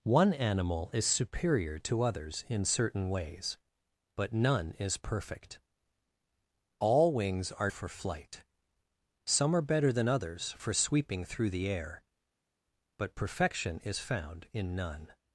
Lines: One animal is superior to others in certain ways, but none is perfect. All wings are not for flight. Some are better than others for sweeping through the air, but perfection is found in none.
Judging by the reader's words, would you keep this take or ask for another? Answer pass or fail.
fail